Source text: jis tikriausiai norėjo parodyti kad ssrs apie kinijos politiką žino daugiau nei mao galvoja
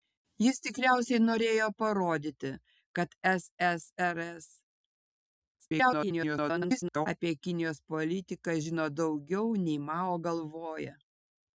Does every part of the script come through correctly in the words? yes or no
no